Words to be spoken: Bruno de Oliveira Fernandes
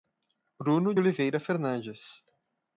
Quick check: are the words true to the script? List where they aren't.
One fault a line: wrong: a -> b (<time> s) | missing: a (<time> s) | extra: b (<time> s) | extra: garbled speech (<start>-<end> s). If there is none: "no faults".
missing: de (0.9 s)